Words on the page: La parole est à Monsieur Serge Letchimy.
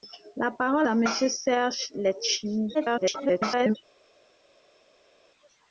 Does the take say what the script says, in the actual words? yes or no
no